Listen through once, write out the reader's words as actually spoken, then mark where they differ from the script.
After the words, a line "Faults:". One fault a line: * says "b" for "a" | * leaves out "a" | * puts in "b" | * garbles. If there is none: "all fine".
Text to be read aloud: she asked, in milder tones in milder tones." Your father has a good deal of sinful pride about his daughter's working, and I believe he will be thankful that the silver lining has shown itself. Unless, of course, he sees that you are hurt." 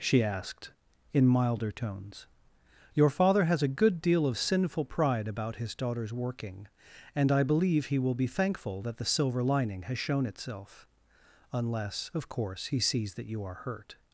she asked, in milder tones." Your father has a good deal of sinful pride about his daughter's working, and I believe he will be thankful that the silver lining has shown itself. Unless, of course, he sees that you are hurt."
Faults:
* leaves out "in milder tones"